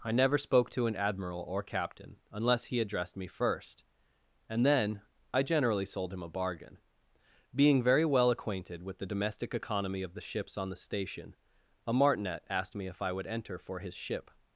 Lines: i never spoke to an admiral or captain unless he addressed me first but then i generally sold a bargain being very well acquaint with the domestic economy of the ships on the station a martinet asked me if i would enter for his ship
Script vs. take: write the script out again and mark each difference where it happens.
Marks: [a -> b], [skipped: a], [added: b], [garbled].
i never spoke to an admiral or captain unless he addressed me first [but -> and] then i generally sold [added: him] a bargain being very well [acquaint -> acquainted] with the domestic economy of the ships on the station a martinet asked me if i would enter for his ship